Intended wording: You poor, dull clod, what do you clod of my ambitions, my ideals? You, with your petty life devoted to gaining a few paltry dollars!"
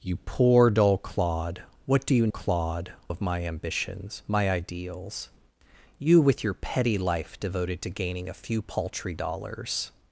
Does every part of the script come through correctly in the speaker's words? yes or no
yes